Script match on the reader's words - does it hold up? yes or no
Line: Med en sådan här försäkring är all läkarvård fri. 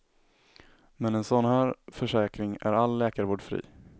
yes